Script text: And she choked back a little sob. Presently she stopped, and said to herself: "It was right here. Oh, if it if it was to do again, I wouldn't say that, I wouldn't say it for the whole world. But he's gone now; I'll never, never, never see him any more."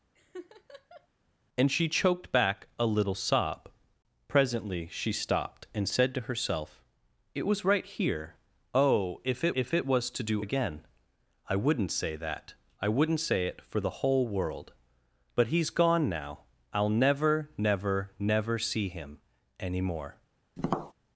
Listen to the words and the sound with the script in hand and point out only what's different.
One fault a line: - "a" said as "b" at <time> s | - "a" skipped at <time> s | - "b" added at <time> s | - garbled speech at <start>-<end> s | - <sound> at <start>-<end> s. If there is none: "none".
- laugh at 0.1-1.1 s
- tap at 20.6-20.9 s